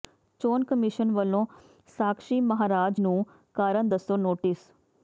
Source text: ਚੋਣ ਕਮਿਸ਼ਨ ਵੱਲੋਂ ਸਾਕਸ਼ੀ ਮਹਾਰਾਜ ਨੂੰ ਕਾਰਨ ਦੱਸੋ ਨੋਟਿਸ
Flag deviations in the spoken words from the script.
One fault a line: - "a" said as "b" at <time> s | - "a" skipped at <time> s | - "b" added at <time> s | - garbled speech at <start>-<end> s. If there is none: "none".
none